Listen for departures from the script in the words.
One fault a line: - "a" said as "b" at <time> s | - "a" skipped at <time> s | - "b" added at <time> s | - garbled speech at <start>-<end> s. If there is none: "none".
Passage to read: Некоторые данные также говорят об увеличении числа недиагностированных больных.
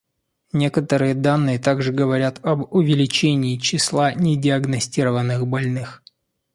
none